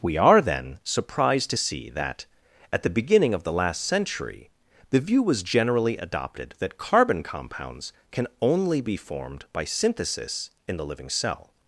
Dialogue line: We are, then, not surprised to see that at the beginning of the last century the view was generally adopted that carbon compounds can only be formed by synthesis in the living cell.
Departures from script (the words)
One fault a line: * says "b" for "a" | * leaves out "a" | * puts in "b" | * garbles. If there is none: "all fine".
* leaves out "not"